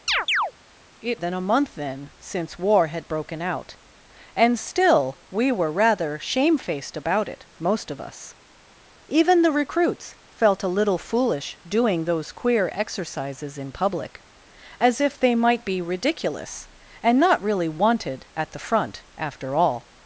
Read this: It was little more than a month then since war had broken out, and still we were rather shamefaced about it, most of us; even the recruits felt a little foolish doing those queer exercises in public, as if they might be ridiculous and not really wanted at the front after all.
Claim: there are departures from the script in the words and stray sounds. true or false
true